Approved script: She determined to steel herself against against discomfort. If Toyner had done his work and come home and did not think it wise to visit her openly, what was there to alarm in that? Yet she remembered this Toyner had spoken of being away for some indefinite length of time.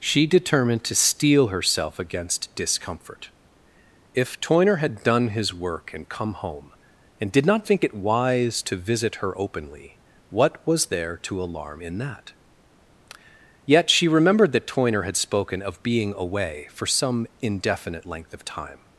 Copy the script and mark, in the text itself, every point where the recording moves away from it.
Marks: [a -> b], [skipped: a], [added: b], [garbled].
She determined to steel herself against [skipped: against] discomfort. If Toyner had done his work and come home and did not think it wise to visit her openly, what was there to alarm in that? Yet she remembered [this -> that] Toyner had spoken of being away for some indefinite length of time.